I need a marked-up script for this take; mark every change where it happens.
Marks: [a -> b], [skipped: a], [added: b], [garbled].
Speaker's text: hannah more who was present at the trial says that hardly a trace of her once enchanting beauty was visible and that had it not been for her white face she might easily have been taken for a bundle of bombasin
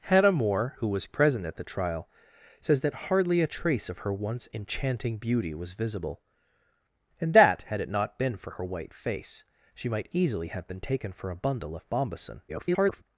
hannah more who was present at the trial says that hardly a trace of her once enchanting beauty was visible and that had it not been for her white face she might easily have been taken for a bundle of bombasin [garbled]